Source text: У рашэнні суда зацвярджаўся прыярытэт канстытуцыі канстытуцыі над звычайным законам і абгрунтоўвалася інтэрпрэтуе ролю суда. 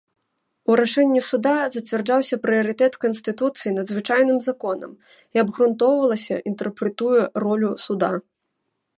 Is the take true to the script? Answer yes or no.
no